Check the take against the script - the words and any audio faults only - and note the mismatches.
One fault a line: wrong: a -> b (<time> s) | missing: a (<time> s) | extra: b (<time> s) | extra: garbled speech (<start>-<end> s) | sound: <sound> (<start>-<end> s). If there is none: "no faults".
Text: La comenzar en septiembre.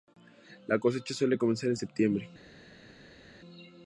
extra: cosecha suele (0.8 s)